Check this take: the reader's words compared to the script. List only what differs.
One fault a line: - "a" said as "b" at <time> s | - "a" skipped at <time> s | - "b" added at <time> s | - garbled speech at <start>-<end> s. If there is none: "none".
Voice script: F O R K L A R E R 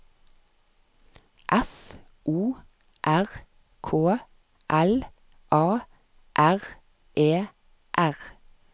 none